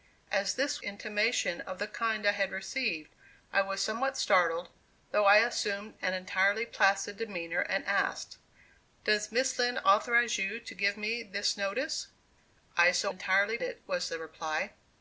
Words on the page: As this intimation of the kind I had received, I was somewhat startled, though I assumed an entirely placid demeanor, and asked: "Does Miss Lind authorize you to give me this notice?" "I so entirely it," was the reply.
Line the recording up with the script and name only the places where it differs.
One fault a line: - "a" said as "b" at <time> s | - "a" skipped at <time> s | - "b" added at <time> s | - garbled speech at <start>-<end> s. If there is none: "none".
none